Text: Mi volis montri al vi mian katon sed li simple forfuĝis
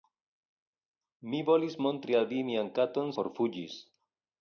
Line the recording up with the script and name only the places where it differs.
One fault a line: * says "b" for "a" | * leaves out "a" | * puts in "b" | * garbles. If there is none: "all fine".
* leaves out "sed li simple"